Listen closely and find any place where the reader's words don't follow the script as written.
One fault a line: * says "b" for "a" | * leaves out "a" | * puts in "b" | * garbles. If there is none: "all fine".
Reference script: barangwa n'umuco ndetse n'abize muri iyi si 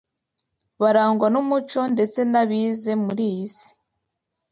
all fine